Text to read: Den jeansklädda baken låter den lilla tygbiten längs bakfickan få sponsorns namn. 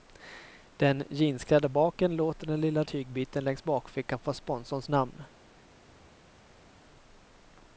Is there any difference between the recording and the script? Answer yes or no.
no